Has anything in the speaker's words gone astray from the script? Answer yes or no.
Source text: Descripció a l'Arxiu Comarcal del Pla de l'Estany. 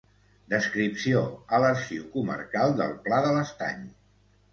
no